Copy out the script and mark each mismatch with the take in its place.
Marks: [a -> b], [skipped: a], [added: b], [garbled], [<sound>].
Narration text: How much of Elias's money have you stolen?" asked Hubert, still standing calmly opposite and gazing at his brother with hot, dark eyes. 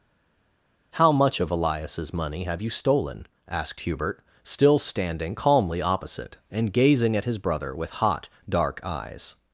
How much of Elias's money have you stolen?" asked Hubert, still standing calmly opposite and gazing at his brother with hot, dark eyes.